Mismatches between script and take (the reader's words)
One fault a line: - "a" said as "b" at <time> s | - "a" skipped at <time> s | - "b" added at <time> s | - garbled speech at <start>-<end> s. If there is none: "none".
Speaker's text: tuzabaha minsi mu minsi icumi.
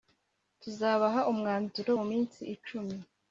- "minsi" said as "umwanzuro" at 1.3 s